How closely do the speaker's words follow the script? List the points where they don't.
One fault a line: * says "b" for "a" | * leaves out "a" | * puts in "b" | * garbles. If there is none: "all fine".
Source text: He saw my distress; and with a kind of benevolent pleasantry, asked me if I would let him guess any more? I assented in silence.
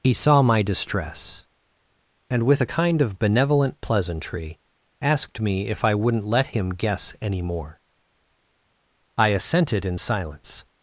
* says "wouldn't" for "would"